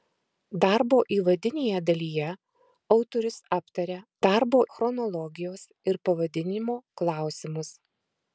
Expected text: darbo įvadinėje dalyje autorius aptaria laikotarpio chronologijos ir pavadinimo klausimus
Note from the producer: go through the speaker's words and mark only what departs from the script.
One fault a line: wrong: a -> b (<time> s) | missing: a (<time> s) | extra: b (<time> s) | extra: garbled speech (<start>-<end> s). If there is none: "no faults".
wrong: laikotarpio -> darbo (4.2 s)